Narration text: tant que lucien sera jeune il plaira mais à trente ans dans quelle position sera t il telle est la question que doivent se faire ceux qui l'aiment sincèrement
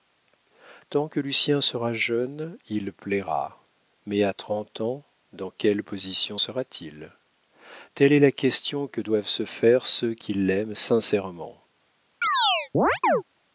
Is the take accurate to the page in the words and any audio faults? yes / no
no